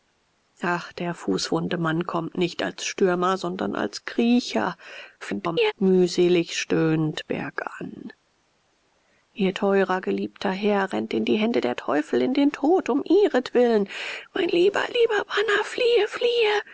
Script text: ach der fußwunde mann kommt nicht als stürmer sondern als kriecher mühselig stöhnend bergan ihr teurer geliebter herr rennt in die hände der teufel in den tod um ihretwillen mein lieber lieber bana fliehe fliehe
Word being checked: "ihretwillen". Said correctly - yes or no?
yes